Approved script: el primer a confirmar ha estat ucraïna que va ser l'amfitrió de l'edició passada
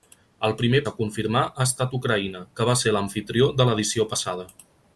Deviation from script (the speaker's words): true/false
false